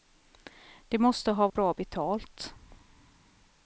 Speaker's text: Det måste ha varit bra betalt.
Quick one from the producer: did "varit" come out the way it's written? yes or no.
no